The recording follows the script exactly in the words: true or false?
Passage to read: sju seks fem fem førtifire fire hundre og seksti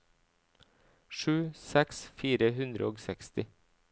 false